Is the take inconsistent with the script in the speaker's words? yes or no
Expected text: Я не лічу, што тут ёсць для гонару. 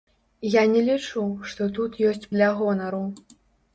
no